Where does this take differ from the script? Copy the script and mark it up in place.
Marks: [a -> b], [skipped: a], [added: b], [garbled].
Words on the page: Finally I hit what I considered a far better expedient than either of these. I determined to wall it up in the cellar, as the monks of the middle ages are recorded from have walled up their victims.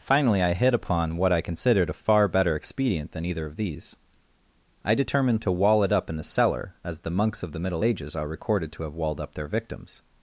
Finally I hit [added: upon] what I considered a far better expedient than either of these. I determined to wall it up in the cellar, as the monks of the middle ages are recorded [from -> to] have walled up their victims.